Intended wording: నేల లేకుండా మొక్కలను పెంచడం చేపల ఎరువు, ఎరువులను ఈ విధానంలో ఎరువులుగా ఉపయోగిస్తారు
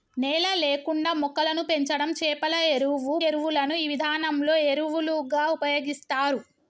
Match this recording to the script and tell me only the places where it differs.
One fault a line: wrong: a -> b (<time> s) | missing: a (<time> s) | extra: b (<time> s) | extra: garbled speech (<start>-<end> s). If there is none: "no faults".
no faults